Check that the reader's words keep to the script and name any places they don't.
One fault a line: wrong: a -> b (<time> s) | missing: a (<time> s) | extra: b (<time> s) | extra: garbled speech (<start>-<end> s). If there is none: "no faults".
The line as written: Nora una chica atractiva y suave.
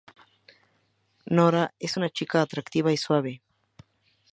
extra: es (1.8 s)